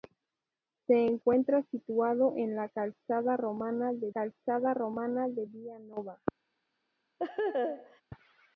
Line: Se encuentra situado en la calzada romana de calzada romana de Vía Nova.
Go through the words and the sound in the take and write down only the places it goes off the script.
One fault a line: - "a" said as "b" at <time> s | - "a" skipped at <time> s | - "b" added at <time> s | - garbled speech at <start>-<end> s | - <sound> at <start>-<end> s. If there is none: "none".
- laugh at 7.2-8.0 s